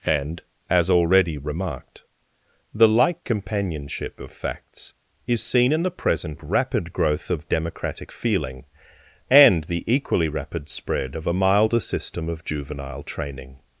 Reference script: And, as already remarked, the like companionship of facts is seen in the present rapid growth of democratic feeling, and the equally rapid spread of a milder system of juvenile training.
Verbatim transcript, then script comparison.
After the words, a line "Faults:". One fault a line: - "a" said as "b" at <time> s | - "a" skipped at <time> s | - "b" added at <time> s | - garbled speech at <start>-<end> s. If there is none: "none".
And, as already remarked, the like companionship of facts is seen in the present rapid growth of democratic feeling, and the equally rapid spread of a milder system of juvenile training.
Faults:
none